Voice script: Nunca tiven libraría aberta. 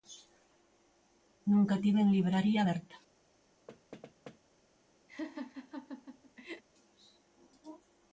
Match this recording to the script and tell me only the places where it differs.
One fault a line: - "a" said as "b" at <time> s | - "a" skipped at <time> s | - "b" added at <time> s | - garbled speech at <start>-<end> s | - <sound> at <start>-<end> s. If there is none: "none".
- thud at 3.7-4.4 s
- laugh at 5.1-6.6 s